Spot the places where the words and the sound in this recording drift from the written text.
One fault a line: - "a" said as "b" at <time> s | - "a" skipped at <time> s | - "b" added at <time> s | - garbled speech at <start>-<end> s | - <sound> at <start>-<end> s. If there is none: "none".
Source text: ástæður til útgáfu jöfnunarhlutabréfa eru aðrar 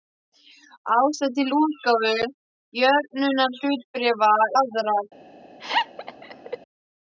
- "eru" skipped at 4.3 s
- laugh at 5.6-6.6 s